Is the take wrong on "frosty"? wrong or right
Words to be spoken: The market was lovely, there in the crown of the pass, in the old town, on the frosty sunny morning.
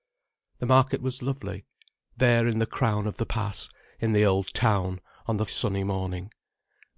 wrong